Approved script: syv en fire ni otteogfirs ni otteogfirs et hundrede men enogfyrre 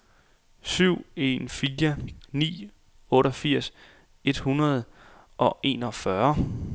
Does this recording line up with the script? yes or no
no